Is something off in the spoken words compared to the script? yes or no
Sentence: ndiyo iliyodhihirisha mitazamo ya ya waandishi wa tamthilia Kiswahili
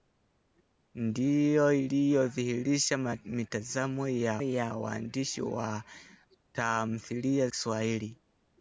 no